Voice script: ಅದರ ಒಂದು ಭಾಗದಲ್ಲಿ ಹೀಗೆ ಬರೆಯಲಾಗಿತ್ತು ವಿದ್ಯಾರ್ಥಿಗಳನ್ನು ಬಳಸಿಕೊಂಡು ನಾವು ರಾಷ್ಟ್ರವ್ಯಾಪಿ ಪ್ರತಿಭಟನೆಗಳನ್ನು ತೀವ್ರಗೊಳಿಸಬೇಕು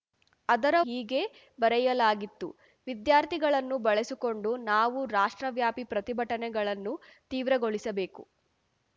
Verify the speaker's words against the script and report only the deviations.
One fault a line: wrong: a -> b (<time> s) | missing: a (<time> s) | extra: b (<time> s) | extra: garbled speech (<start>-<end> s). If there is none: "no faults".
missing: ಒಂದು ಭಾಗದಲ್ಲಿ (0.8 s)